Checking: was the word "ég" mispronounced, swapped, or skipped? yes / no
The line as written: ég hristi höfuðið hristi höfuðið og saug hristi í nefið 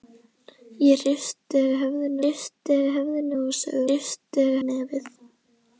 no